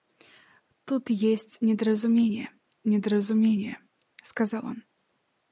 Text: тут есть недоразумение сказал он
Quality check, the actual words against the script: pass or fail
fail